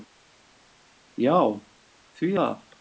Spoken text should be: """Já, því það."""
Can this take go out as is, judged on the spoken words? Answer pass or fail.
pass